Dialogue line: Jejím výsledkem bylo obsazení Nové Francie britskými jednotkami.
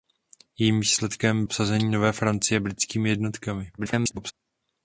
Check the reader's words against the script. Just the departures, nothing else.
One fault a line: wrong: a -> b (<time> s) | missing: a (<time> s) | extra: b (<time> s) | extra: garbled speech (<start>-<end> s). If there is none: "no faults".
missing: bylo (1.4 s)
extra: garbled speech (3.8-4.3 s)